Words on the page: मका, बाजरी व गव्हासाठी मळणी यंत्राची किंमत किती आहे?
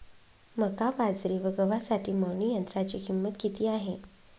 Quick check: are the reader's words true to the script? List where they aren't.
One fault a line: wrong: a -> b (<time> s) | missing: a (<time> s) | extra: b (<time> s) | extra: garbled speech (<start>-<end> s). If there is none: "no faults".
no faults